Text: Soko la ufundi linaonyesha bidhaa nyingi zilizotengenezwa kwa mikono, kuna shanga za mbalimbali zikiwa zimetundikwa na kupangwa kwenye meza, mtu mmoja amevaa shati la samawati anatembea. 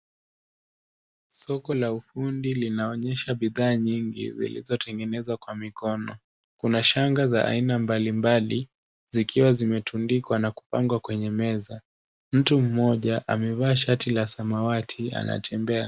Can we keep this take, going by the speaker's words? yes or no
no